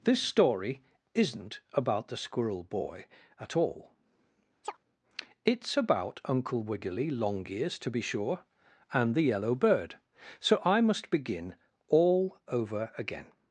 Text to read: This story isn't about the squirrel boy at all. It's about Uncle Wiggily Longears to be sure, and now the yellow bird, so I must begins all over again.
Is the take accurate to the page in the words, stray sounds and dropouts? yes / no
no